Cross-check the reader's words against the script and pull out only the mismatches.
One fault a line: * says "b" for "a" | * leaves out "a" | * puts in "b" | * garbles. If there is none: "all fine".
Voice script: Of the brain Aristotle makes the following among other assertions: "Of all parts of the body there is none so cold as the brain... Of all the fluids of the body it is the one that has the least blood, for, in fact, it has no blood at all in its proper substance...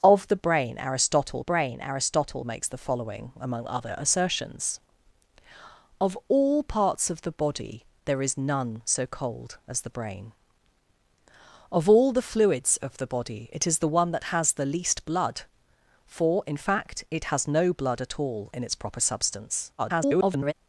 * puts in "brain Aristotle"
* garbles